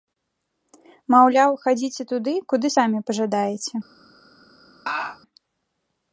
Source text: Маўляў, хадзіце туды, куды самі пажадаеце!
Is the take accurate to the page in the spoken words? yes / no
yes